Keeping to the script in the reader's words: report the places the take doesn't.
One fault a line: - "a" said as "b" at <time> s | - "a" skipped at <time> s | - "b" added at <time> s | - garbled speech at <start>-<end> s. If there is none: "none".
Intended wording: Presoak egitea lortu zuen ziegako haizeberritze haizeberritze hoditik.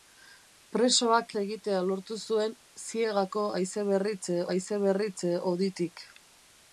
none